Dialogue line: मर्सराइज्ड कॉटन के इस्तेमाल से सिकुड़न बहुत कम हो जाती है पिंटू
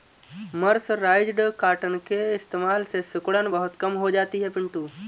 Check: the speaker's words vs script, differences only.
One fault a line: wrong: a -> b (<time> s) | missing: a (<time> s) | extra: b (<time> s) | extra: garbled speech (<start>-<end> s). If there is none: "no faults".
no faults